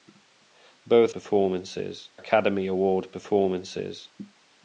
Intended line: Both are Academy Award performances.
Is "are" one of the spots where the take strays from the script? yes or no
yes